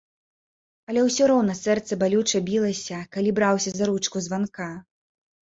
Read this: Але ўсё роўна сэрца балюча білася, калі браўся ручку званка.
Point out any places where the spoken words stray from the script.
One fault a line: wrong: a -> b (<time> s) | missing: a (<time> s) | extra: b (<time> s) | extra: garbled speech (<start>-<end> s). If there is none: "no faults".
extra: за (3.8 s)